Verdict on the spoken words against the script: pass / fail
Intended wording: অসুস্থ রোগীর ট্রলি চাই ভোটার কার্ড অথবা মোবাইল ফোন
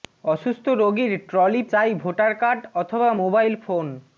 pass